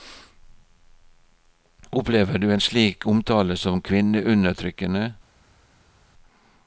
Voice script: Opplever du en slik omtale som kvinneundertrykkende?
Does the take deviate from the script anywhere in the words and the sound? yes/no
no